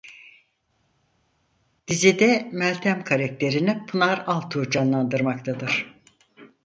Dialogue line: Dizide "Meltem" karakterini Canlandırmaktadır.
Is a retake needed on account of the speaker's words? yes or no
yes